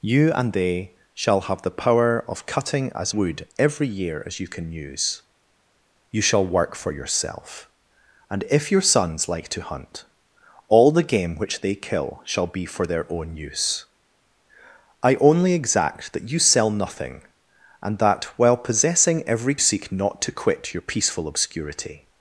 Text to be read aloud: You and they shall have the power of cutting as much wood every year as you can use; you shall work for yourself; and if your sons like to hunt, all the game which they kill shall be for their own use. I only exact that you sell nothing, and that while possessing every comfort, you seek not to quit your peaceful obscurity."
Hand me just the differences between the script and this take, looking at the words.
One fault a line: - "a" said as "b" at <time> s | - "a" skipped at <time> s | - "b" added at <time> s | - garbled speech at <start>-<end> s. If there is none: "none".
- "much" skipped at 3.1 s
- "comfort you" skipped at 19.6 s